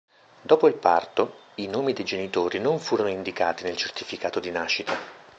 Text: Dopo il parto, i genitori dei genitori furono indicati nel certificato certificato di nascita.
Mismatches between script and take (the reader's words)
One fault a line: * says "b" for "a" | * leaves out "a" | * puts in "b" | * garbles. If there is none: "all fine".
* says "nomi" for "genitori"
* puts in "non"
* leaves out "certificato"